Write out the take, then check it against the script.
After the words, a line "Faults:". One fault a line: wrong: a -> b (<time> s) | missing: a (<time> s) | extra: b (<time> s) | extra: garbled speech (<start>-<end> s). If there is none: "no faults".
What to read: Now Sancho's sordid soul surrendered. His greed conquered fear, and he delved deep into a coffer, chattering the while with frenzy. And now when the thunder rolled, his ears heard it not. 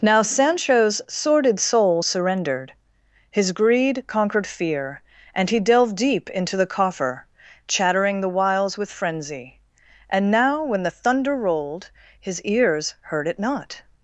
Now Sancho's sordid soul surrendered. His greed conquered fear, and he delved deep into the coffer, chattering the whiles with frenzy. And now when the thunder rolled, his ears heard it not.
Faults:
wrong: a -> the (6.6 s)
wrong: while -> whiles (8.3 s)